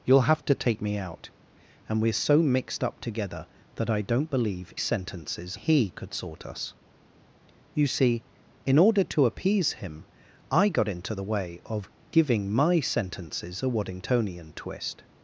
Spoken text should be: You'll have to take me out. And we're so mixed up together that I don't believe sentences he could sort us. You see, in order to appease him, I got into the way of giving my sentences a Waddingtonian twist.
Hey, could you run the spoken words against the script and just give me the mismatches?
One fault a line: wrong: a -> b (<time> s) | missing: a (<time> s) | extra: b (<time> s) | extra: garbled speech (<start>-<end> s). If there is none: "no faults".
no faults